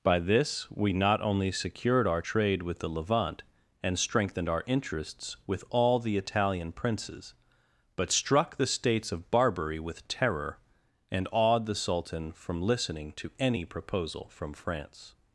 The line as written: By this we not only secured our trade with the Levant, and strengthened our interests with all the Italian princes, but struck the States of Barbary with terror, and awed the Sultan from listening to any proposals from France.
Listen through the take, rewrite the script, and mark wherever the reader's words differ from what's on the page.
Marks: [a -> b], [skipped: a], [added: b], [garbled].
By this we not only secured our trade with the Levant, and strengthened our interests with all the Italian princes, but struck the States of Barbary with terror, and awed the Sultan from listening to any [proposals -> proposal] from France.